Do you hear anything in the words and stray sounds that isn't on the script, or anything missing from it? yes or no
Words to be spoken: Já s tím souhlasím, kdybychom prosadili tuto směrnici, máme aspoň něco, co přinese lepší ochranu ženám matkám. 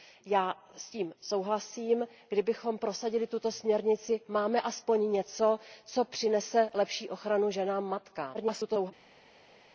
yes